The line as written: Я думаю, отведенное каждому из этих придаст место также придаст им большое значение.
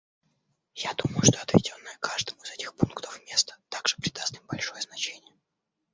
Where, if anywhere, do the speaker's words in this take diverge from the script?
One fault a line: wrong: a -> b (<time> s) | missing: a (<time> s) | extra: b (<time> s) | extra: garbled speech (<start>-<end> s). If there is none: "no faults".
extra: что (1.2 s)
wrong: придаст -> пунктов (2.7 s)